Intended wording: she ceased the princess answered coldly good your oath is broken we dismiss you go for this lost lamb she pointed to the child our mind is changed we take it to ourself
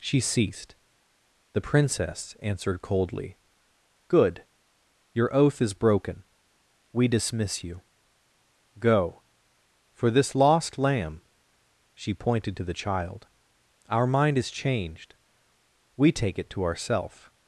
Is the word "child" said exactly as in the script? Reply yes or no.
yes